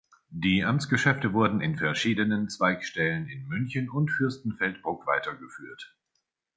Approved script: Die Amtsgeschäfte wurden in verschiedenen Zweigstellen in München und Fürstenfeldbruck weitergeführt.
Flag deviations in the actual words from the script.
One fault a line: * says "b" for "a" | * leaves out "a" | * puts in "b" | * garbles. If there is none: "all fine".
all fine